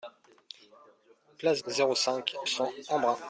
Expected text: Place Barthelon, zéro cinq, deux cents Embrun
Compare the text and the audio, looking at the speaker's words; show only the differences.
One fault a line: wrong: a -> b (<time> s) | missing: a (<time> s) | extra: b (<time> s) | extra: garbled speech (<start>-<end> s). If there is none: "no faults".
missing: Barthelon (1.6 s)
missing: deux (2.3 s)